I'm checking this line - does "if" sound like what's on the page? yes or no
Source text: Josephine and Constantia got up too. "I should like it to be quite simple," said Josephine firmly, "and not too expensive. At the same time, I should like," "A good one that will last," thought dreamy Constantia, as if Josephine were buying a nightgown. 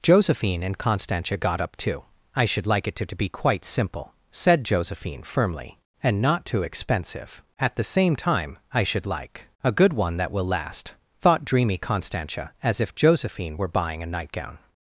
yes